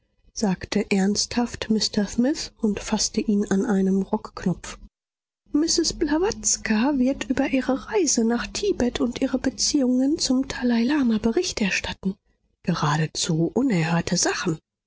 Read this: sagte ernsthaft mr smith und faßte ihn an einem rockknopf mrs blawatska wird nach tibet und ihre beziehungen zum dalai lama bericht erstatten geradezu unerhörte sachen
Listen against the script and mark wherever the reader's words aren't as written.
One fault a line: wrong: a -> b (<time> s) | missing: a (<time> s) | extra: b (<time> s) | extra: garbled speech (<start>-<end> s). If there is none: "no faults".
extra: über ihre reise (7.3 s)